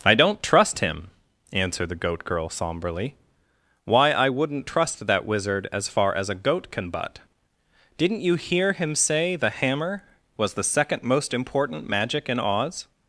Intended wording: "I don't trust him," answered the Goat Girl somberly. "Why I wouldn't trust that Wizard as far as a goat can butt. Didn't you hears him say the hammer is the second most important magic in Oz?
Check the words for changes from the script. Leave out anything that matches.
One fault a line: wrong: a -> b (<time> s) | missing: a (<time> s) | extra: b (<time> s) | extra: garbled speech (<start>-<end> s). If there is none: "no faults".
wrong: hears -> hear (8.3 s)
wrong: is -> was (10.4 s)